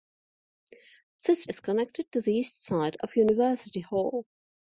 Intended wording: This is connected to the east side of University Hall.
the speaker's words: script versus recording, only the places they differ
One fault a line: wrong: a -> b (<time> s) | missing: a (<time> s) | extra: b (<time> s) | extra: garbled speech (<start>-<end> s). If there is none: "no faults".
no faults